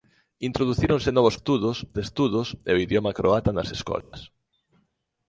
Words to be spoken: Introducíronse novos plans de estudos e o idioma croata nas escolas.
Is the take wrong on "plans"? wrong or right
wrong